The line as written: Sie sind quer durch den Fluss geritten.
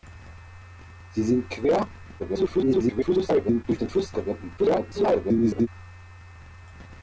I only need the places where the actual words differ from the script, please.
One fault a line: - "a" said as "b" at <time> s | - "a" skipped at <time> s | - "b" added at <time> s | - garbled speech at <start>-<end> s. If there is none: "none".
- garbled speech at 2.2-3.6 s
- garbled speech at 4.6-5.7 s